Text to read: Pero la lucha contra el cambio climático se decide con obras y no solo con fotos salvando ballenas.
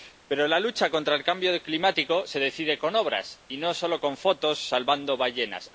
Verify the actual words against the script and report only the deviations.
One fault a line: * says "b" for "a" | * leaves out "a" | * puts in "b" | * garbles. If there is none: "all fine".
all fine